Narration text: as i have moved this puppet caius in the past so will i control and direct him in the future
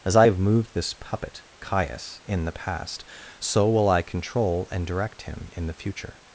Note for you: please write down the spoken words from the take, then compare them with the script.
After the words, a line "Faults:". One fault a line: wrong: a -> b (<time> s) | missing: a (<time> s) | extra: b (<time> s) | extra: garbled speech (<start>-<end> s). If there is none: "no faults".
as i have moved this puppet caius in the past so will i control and direct him in the future
Faults:
no faults